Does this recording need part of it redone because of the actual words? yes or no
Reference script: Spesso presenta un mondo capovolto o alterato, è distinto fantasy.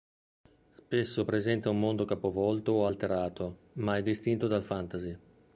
yes